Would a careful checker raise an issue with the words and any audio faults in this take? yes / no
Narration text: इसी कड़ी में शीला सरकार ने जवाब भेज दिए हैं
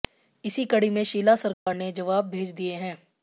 yes